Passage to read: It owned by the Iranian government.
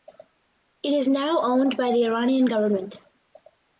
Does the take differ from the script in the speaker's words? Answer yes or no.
yes